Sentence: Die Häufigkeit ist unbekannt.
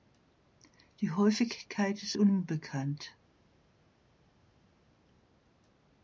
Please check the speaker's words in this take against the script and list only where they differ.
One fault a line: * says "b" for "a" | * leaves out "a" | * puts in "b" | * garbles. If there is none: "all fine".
all fine